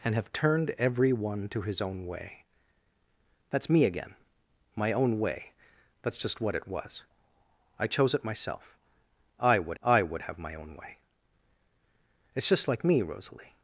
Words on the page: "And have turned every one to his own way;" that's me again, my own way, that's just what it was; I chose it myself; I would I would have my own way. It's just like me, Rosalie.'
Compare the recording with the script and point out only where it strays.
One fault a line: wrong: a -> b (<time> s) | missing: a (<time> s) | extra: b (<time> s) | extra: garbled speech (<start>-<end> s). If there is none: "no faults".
no faults